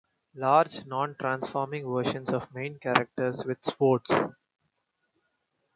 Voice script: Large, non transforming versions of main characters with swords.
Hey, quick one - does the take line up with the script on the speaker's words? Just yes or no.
yes